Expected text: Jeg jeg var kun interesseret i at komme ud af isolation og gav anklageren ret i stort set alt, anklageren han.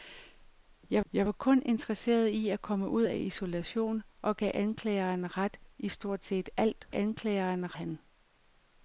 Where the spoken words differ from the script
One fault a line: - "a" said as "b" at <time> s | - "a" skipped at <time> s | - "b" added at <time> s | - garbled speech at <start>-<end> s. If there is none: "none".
none